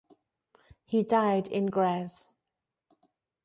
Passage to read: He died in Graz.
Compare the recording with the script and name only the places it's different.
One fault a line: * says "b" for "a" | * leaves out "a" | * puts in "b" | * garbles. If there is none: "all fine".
all fine